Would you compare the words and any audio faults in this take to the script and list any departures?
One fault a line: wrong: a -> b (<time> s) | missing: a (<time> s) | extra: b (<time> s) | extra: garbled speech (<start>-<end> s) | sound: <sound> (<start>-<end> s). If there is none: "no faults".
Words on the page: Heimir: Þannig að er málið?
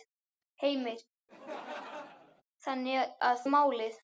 sound: laugh (1.3-2.4 s)